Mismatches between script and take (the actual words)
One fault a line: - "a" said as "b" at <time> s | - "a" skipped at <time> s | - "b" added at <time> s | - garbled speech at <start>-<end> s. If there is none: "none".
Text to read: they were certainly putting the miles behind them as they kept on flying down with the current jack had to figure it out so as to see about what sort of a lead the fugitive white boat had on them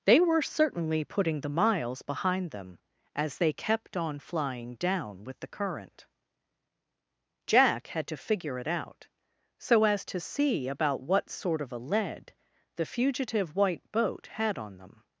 none